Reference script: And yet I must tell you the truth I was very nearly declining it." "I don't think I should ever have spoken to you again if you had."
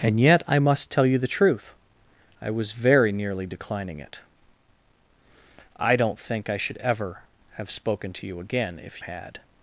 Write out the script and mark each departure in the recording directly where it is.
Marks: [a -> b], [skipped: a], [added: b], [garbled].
And yet I must tell you the truth I was very nearly declining it." "I don't think I should ever have spoken to you again if [skipped: you] had."